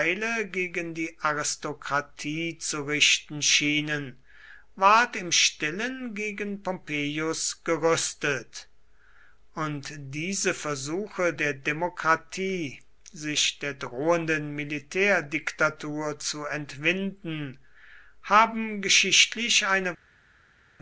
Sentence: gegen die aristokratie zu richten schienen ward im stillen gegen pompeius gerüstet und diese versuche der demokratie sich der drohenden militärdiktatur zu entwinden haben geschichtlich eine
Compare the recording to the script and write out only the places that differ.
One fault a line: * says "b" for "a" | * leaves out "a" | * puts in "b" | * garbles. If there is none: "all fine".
all fine